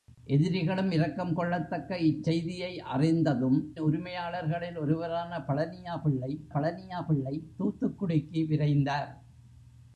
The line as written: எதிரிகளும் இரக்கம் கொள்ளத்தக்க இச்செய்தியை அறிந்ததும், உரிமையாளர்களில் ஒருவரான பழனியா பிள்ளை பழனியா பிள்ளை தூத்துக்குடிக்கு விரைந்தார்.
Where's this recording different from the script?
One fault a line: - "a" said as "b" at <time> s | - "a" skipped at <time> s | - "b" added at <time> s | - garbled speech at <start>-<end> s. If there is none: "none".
none